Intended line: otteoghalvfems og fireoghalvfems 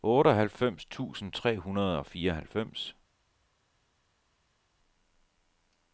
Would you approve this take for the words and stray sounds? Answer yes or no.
no